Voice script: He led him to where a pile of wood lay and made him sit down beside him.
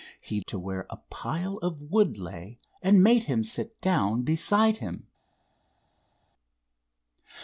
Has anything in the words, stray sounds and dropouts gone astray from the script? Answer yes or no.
yes